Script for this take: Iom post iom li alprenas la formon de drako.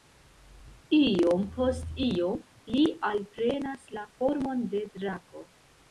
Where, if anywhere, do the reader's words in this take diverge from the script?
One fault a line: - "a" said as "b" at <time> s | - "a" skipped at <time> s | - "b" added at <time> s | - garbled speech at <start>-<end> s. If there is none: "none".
none